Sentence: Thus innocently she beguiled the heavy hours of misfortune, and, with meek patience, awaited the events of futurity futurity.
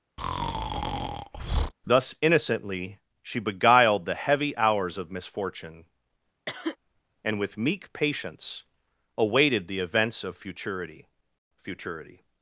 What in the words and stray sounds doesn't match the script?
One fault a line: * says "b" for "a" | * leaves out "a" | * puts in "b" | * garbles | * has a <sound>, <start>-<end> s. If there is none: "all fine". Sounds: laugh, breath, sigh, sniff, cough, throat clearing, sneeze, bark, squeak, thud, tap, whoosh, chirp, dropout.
* has a breath, 0.2-1.7 s
* has a cough, 6.5-6.8 s